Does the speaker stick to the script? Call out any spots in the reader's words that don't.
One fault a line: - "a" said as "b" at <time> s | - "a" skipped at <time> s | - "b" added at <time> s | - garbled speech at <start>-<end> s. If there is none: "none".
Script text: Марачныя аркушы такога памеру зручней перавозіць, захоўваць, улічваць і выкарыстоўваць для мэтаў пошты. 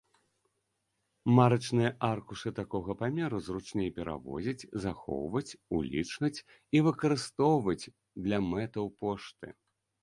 none